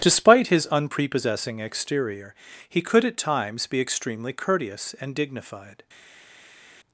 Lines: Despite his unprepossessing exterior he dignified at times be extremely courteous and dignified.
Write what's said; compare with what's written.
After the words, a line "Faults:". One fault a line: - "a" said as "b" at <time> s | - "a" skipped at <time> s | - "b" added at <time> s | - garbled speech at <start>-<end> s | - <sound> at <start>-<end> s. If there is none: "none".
Despite his unprepossessing exterior he could at times be extremely courteous and dignified.
Faults:
- "dignified" said as "could" at 2.8 s